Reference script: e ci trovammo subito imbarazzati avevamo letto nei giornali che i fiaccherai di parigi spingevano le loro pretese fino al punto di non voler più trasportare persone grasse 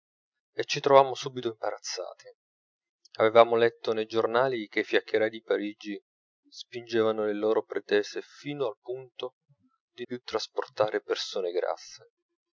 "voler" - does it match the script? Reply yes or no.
no